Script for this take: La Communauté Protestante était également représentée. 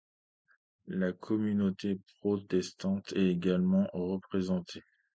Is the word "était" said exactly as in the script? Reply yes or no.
no